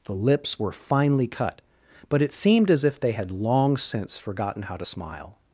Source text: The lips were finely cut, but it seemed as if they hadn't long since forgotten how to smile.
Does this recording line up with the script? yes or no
no